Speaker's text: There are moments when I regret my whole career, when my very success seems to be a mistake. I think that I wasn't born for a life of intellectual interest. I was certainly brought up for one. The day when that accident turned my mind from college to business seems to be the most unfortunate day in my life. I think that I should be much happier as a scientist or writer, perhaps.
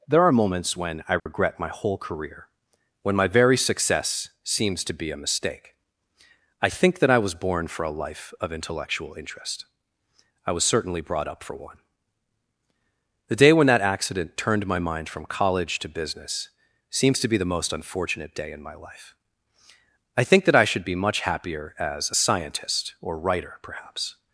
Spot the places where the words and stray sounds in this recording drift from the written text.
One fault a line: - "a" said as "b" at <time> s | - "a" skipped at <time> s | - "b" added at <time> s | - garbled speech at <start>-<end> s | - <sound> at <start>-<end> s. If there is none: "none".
- dropout at 1.2-1.3 s
- "wasn't" said as "was" at 7.2 s